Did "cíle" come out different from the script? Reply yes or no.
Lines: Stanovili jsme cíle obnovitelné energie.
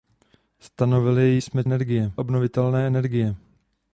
yes